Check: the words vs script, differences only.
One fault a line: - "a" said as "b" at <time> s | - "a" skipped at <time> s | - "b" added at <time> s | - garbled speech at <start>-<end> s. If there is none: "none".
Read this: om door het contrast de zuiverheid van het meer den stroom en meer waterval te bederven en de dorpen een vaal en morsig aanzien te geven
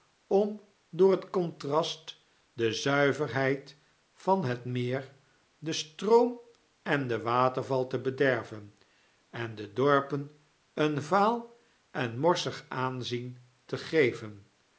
- "meer" said as "den" at 7.1 s